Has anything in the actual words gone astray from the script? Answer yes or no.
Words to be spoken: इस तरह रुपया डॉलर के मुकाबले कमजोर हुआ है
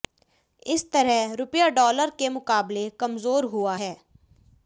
no